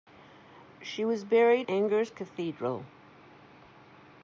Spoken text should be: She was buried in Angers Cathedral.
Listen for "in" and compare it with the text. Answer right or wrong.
wrong